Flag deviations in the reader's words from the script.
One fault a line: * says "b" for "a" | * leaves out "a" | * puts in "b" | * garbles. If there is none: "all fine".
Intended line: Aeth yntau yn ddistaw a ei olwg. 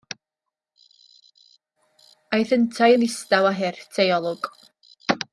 * puts in "hurt"